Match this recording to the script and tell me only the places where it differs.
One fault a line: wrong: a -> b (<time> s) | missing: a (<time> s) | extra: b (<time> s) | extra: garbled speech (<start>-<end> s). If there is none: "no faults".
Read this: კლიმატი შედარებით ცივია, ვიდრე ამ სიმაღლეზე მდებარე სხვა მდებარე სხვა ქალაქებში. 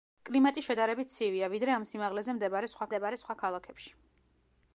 no faults